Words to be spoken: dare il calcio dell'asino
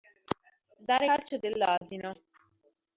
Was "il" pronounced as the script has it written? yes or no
no